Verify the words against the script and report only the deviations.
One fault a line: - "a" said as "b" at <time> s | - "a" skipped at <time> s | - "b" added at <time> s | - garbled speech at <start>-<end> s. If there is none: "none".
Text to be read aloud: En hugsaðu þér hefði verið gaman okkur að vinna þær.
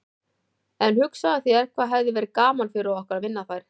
- "hvað" added at 1.8 s
- "fyrir" added at 2.8 s